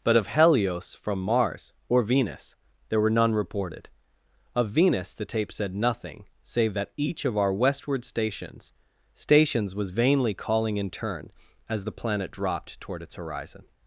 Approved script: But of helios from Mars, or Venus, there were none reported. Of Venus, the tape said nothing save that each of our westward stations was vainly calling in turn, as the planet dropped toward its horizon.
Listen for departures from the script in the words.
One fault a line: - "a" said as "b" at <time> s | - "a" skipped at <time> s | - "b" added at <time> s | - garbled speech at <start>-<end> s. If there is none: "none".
- "stations" added at 9.1 s